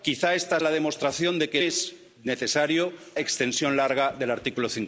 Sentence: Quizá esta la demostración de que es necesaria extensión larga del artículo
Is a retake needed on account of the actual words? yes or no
no